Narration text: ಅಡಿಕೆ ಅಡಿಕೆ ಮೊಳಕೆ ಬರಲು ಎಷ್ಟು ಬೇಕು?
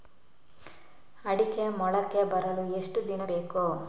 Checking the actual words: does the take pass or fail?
fail